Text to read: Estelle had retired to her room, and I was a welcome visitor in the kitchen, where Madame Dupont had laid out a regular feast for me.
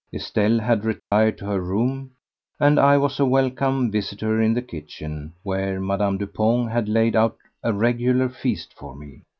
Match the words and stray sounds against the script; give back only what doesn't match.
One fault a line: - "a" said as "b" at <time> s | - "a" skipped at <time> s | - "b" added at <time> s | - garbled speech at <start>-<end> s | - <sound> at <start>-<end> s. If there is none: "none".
- dropout at 1.0-1.1 s